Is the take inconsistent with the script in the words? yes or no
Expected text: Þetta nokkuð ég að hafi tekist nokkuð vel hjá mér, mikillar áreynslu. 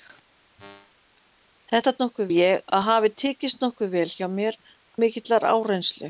no